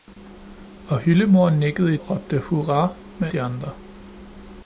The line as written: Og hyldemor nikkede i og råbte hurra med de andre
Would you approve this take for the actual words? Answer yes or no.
yes